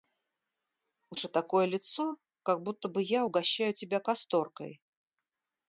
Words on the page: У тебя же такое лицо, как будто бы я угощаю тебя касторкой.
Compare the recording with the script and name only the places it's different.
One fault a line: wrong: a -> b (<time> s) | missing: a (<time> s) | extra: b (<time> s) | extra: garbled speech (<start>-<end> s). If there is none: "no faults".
missing: тебя (1.1 s)